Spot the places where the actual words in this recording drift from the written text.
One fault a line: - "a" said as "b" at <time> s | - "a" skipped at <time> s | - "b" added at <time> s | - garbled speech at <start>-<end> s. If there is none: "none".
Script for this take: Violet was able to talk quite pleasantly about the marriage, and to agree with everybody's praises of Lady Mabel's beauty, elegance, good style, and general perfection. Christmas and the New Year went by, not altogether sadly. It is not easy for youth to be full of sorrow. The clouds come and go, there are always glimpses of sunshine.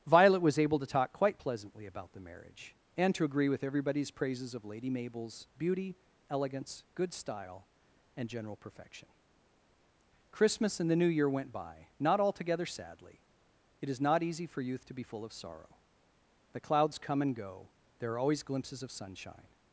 none